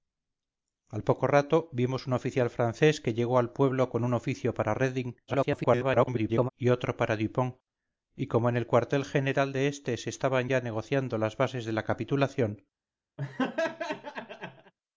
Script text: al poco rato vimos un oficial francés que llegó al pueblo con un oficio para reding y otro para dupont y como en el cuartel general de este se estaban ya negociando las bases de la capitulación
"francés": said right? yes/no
yes